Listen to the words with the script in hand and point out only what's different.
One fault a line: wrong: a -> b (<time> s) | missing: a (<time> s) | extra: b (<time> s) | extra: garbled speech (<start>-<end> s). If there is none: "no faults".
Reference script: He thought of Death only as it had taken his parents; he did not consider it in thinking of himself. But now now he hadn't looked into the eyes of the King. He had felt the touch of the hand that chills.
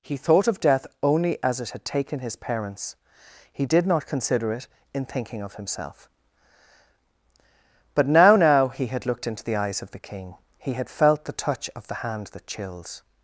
wrong: hadn't -> had (8.9 s)